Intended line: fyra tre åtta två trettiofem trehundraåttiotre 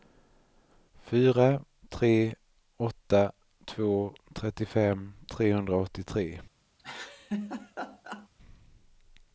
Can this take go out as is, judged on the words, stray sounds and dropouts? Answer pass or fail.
fail